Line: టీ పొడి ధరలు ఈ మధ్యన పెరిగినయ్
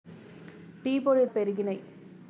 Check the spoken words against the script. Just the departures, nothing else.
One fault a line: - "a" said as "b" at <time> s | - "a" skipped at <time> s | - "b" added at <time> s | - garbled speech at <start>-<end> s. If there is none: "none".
- "ధరలు ఈ మధ్యన" skipped at 1.2 s